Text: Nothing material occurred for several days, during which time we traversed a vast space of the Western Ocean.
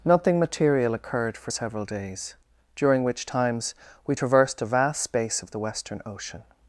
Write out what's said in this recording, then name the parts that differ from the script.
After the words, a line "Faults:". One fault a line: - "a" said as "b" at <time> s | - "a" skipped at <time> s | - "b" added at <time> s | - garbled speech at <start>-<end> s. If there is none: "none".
Nothing material occurred for several days, during which times we traversed a vast space of the Western Ocean.
Faults:
- "time" said as "times" at 3.2 s